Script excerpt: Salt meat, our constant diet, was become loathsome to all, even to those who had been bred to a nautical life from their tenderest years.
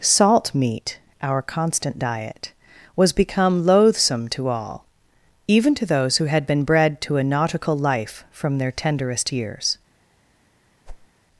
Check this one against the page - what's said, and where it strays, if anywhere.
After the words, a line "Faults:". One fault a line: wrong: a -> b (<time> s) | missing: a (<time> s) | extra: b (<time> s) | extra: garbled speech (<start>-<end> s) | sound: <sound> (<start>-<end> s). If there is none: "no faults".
Salt meat, our constant diet, was become loathsome to all, even to those who had been bred to a nautical life from their tenderest years.
Faults:
sound: whoosh (10.9-11.1 s)